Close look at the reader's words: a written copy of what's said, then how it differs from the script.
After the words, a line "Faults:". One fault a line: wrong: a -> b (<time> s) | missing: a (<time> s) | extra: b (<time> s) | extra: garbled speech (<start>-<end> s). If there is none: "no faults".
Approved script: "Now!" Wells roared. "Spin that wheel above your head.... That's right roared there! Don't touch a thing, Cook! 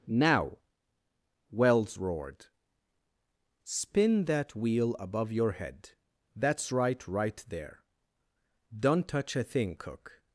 "Now!" Wells roared. "Spin that wheel above your head.... That's right right there! Don't touch a thing, Cook!
Faults:
wrong: roared -> right (7.1 s)